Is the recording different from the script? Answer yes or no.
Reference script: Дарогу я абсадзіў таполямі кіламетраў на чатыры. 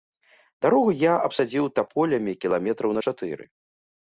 no